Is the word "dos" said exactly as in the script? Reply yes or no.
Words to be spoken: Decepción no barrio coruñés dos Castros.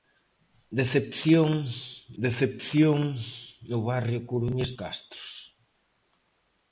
no